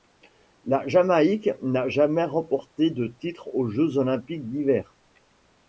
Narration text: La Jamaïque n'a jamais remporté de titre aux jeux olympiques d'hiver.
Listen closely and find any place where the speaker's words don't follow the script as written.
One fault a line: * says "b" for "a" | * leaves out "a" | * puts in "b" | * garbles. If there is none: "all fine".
all fine